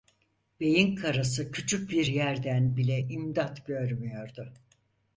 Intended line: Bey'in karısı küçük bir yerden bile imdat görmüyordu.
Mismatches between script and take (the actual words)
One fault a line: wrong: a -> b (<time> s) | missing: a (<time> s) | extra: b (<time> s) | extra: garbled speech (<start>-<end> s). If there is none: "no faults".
no faults